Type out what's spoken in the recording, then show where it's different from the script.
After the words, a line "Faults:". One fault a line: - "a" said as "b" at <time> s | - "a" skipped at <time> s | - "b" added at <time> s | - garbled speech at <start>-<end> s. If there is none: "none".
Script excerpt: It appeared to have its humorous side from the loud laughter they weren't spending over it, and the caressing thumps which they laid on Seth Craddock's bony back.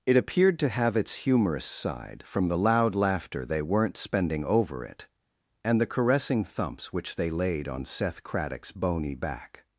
It appeared to have its humorous side from the loud laughter they weren't spending over it, and the caressing thumps which they laid on Seth Craddock's bony back.
Faults:
none